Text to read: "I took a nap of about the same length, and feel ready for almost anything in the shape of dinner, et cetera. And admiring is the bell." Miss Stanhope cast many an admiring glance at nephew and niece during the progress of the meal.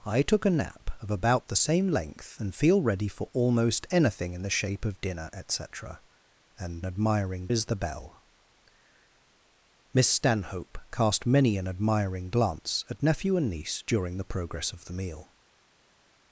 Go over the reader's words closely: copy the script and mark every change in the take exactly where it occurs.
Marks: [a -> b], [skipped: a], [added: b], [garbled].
"I took a nap of about the same length, and feel ready for almost anything in the shape of dinner, et cetera. And admiring is the bell." Miss Stanhope cast many an admiring glance at nephew and niece during the progress of the meal.